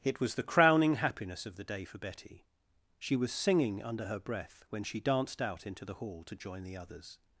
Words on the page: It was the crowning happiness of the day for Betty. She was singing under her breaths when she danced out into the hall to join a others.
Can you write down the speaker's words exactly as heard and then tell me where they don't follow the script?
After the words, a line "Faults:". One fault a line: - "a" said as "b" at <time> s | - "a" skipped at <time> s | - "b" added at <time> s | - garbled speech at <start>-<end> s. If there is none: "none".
It was the crowning happiness of the day for Betty. She was singing under her breath when she danced out into the hall to join the others.
Faults:
- "breaths" said as "breath" at 4.2 s
- "a" said as "the" at 6.6 s